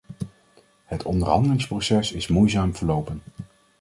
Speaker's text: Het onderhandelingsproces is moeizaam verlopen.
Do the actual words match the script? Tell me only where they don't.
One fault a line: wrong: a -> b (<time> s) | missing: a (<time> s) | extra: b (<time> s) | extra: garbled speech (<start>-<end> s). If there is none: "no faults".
no faults